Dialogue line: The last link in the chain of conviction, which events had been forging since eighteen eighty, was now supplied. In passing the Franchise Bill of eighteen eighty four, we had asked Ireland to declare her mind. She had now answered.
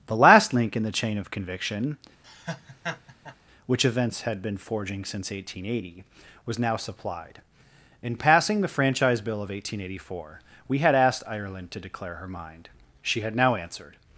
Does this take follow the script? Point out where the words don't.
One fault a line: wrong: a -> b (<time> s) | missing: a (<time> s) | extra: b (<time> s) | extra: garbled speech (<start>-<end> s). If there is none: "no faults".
no faults